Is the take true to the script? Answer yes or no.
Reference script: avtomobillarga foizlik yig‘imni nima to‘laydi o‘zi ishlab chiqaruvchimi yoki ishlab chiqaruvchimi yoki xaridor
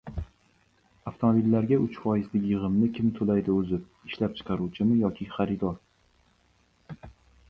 no